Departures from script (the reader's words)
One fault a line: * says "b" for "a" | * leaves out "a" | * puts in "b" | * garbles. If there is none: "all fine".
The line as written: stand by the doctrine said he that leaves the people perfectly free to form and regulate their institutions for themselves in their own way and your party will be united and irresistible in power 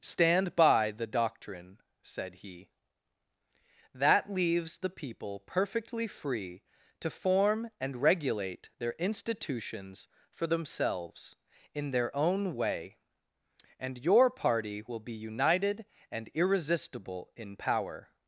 all fine